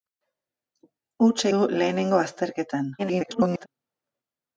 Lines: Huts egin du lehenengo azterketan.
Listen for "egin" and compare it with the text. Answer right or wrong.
wrong